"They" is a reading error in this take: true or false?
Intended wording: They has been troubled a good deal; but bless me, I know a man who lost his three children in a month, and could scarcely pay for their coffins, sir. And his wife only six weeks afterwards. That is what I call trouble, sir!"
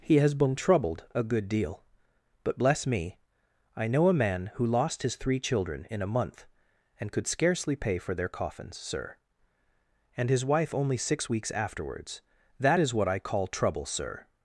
true